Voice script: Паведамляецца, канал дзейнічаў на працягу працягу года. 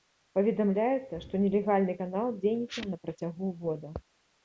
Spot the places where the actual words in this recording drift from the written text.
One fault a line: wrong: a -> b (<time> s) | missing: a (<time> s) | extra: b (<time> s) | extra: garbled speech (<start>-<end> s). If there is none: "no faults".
extra: што нелегальны (1.3 s)
missing: працягу (3.5 s)